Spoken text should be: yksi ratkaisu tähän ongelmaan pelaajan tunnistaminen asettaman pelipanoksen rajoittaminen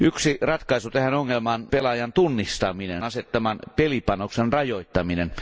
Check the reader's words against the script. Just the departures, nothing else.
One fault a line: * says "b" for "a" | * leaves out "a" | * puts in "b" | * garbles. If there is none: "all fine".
all fine